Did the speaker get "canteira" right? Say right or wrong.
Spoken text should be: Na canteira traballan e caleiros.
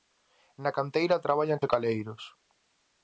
right